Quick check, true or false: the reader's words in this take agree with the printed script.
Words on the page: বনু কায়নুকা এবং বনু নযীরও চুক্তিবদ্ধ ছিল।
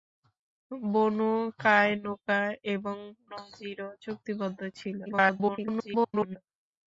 false